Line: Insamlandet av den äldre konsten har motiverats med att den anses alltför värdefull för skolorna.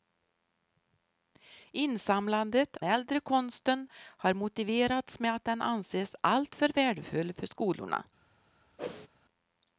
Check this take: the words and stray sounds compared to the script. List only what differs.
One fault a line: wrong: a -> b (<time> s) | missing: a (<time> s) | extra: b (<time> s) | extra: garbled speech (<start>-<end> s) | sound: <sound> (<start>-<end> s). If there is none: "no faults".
missing: av den (2.8 s)
sound: whoosh (8.8-9.1 s)